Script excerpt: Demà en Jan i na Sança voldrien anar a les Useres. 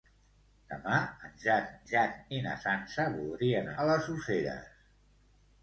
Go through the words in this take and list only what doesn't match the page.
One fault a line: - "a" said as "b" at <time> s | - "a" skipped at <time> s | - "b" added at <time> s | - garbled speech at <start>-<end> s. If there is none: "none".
- "Jan" added at 1.9 s
- "anar" skipped at 3.7 s